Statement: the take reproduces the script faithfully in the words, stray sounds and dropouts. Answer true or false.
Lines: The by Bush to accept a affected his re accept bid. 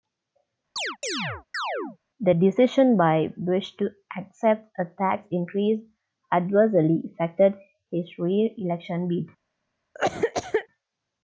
false